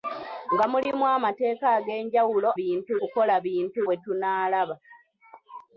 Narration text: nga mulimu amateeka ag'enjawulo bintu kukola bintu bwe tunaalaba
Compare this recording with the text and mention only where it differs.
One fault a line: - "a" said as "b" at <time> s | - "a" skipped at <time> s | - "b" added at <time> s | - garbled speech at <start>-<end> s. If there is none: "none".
none